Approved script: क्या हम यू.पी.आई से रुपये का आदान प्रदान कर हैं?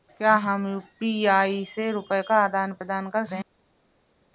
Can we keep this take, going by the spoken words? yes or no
yes